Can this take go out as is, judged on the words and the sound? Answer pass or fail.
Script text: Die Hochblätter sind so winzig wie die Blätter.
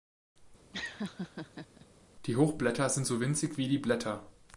fail